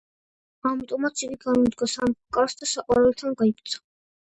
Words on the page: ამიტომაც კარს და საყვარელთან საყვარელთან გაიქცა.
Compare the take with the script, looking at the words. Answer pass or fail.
fail